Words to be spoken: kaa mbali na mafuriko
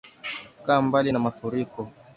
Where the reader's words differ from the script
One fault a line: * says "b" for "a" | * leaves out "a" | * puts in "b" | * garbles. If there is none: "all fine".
all fine